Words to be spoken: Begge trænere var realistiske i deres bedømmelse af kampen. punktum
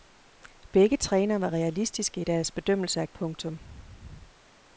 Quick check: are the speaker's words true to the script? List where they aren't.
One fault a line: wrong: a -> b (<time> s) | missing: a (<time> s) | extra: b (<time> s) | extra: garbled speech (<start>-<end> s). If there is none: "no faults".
missing: kampen (3.1 s)